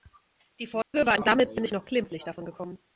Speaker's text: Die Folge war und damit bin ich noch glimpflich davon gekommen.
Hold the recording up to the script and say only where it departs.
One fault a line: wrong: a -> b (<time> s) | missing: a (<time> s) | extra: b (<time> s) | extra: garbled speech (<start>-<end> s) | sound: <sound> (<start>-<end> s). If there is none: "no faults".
sound: dropout (0.8-0.9 s)